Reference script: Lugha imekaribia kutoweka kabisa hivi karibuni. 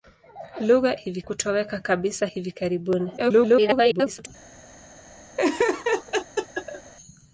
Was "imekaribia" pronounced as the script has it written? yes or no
no